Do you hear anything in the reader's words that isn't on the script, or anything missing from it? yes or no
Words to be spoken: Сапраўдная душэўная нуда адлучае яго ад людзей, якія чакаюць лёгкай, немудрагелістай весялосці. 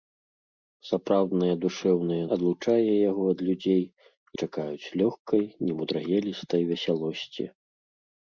yes